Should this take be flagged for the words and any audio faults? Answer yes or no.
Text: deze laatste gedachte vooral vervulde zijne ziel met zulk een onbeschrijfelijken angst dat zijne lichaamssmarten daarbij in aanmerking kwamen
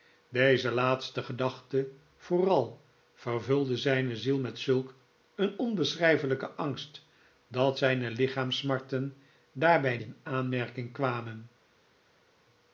no